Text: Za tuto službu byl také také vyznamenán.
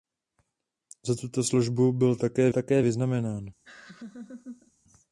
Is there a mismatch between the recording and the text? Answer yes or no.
no